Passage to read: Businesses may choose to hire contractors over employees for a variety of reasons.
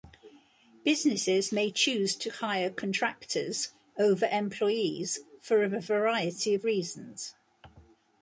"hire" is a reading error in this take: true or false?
false